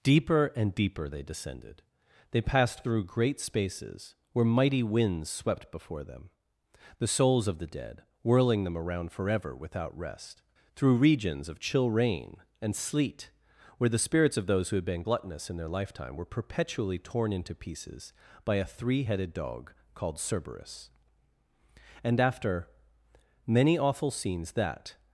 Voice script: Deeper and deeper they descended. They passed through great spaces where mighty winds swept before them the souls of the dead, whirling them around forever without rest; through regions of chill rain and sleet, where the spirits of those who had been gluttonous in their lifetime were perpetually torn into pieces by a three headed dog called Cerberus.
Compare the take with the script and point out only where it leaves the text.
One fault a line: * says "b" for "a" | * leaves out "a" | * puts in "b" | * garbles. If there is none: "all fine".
* puts in "And after many awful scenes that"